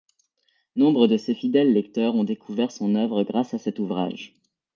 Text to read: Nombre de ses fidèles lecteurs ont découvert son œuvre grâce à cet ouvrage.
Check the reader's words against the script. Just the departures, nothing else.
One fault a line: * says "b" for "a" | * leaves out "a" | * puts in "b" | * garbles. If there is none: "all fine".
all fine